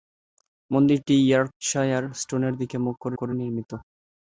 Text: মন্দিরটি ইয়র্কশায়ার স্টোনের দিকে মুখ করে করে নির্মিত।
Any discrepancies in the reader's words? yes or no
no